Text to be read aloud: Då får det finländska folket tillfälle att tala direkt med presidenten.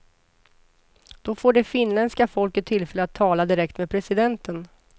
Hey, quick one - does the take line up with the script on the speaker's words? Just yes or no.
yes